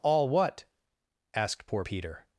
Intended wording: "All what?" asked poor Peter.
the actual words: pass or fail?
pass